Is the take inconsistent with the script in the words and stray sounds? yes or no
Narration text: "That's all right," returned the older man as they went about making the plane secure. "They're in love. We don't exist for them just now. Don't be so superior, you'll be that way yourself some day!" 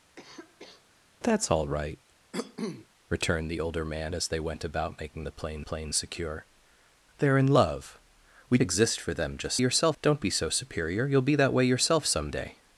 yes